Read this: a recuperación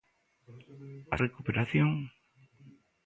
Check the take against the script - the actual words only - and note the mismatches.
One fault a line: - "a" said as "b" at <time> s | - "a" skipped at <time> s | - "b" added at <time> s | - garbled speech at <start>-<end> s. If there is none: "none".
none